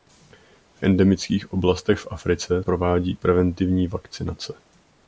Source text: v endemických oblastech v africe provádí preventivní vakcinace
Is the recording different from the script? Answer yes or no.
no